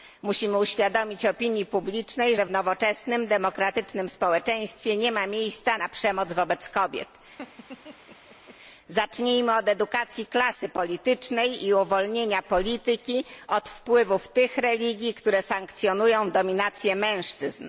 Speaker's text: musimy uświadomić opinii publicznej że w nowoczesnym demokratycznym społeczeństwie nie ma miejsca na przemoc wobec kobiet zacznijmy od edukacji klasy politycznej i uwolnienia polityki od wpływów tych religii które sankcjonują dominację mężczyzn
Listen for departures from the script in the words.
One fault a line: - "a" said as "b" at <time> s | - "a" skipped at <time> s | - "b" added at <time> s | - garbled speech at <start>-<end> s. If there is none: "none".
none